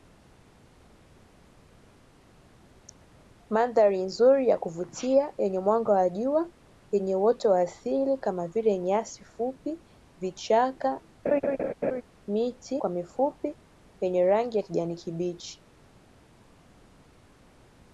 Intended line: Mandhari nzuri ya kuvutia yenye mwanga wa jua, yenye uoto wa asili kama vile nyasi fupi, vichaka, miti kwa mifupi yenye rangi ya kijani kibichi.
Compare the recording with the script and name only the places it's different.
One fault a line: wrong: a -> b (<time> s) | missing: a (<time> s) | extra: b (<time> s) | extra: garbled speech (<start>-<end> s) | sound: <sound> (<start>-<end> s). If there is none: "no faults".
sound: laugh (11.2-12.0 s)